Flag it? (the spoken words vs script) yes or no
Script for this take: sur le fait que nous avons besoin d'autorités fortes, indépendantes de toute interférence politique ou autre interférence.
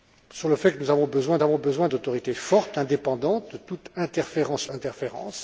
yes